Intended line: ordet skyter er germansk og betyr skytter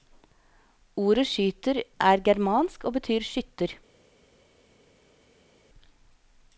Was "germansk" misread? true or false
false